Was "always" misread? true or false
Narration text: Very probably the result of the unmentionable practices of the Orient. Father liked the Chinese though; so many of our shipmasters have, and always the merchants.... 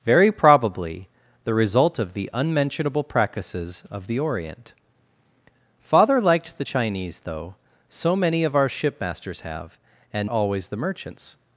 false